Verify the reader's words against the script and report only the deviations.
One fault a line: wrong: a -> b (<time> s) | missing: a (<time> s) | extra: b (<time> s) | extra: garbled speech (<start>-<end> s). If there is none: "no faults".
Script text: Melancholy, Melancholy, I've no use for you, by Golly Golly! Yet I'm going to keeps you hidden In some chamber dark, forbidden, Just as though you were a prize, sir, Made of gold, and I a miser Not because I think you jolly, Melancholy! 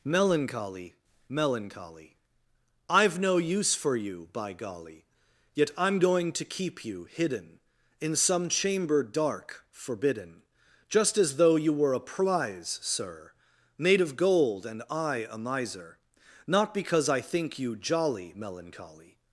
missing: Golly (5.0 s)
wrong: keeps -> keep (6.4 s)